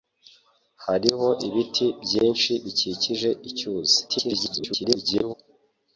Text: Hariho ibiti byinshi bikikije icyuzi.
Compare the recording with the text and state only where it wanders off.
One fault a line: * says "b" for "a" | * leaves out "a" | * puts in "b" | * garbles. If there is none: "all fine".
* garbles